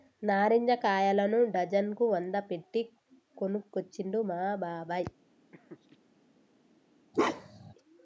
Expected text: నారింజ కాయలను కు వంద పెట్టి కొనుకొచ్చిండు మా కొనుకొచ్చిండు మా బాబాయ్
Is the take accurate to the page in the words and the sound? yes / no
no